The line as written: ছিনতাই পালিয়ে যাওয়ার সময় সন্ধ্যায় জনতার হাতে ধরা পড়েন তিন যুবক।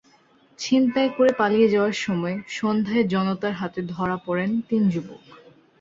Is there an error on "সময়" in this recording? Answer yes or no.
no